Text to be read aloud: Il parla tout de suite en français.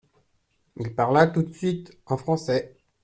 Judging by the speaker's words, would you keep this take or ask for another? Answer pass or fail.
pass